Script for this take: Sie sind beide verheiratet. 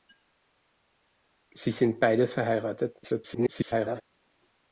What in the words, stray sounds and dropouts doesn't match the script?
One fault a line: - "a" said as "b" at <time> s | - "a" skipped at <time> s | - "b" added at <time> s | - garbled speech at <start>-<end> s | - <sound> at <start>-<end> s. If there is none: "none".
- garbled speech at 3.0-4.0 s